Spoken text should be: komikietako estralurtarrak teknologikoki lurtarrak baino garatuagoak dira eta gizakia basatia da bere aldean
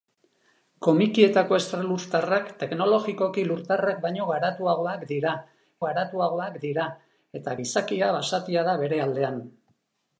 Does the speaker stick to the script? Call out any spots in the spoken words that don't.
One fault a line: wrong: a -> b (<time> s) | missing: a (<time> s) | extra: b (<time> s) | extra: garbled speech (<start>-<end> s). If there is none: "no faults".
extra: garatuagoak dira (5.9 s)